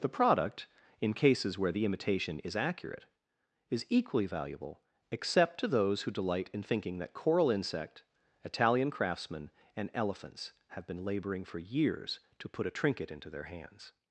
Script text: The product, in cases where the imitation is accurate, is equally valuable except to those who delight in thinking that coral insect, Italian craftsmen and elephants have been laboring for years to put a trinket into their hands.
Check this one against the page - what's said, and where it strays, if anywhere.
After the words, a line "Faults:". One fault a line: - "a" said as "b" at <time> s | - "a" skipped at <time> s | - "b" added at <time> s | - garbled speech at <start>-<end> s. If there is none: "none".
The product, in cases where the imitation is accurate, is equally valuable except to those who delight in thinking that coral insect, Italian craftsmen and elephants have been laboring for years to put a trinket into their hands.
Faults:
none